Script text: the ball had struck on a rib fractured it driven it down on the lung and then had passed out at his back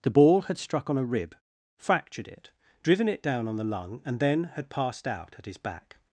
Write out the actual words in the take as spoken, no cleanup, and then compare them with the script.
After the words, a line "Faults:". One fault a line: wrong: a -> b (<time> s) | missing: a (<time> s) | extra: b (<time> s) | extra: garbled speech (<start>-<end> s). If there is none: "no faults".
the ball had struck on a rib fractured it driven it down on the lung and then had passed out at his back
Faults:
no faults